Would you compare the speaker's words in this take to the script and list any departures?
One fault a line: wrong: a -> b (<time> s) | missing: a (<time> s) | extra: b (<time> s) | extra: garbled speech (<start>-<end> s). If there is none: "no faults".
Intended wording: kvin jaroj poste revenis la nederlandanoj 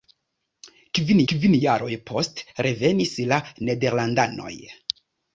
extra: kvin (1.3 s)